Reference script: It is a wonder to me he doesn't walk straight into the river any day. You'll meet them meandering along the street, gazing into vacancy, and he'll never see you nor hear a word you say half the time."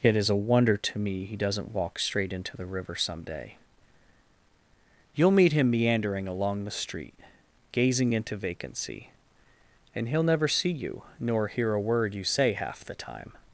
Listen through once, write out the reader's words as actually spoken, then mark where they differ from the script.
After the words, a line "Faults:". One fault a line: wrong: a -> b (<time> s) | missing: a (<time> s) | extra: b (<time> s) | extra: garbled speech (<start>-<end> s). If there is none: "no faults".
It is a wonder to me he doesn't walk straight into the river some day. You'll meet him meandering along the street, gazing into vacancy, and he'll never see you nor hear a word you say half the time."
Faults:
wrong: any -> some (3.0 s)
wrong: them -> him (5.5 s)